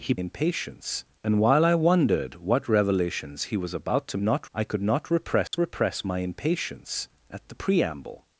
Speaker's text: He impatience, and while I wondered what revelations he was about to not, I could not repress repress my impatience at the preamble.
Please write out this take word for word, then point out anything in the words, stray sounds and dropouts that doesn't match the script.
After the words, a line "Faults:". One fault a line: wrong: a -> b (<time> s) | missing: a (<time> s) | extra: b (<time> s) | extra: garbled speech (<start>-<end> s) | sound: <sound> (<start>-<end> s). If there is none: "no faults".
He impatience, and while I wondered what revelations he was about to not, I could not repress repress my impatience at the preamble.
Faults:
sound: dropout (5.5-5.5 s)